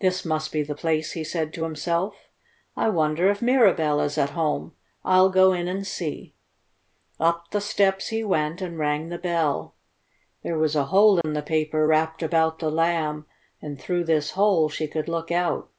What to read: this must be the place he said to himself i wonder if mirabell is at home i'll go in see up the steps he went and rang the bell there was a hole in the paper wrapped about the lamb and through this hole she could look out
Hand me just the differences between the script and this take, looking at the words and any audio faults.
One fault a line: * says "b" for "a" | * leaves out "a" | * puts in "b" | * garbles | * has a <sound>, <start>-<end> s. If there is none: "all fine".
* puts in "and"
* has a dropout, 11.2-11.2 s